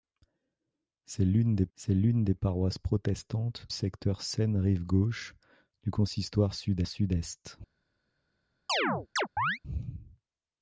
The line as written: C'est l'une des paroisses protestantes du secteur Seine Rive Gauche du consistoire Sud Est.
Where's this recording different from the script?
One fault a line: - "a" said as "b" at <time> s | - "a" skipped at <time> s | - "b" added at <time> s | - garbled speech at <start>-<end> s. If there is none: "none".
- "c'est l'une des" added at 1.7 s
- "du" skipped at 3.6 s
- "Sud" added at 6.9 s